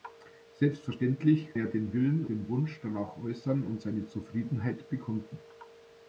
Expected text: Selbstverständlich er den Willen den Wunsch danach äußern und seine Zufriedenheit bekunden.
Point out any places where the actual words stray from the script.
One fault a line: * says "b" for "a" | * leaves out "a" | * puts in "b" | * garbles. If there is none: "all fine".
all fine